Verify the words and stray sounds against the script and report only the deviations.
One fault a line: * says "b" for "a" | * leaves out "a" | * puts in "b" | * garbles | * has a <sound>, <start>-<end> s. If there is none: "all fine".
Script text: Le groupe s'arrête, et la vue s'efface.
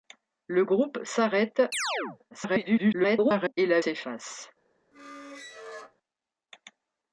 * has a chirp, 1.7-2.2 s
* garbles
* leaves out "vue"
* has a squeak, 4.9-6.0 s